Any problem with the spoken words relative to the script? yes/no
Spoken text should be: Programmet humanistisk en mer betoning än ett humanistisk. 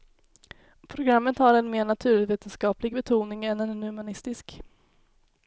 yes